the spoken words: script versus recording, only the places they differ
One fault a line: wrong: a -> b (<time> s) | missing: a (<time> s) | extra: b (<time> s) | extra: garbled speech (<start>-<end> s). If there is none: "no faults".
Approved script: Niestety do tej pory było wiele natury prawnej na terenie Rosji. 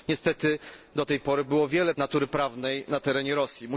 no faults